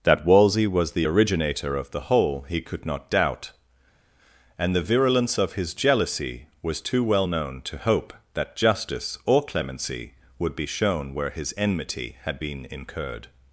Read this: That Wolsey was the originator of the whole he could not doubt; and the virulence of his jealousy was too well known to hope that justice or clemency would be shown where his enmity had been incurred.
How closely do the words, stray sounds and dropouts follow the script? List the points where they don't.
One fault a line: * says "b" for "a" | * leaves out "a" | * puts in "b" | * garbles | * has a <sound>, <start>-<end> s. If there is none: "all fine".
all fine